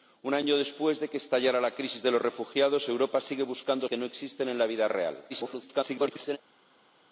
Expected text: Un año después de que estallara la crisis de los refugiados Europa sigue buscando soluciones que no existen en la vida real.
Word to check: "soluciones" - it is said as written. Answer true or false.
false